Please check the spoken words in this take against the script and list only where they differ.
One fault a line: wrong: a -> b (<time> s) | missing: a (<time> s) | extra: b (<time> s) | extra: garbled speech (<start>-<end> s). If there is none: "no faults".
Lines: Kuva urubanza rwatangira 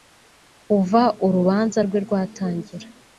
extra: rwe (1.8 s)